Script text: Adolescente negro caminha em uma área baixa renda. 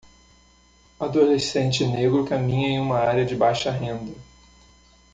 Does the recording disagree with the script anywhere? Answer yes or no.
yes